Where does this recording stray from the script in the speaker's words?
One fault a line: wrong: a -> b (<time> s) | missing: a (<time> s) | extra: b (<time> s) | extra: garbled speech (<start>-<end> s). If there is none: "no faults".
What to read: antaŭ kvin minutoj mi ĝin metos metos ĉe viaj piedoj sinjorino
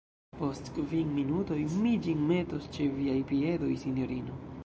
wrong: antaŭ -> post (0.4 s)
missing: metos (2.7 s)